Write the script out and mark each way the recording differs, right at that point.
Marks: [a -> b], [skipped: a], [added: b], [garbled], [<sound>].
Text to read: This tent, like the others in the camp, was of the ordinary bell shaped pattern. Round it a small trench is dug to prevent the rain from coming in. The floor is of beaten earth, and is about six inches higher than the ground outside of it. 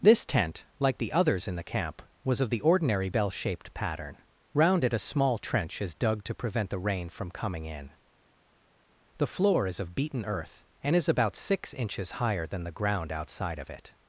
This tent, like the others in the camp, was of the ordinary bell shaped pattern. Round it a small trench is dug to prevent the rain from coming in. The floor is of beaten earth, and is about six inches higher than the ground outside of it.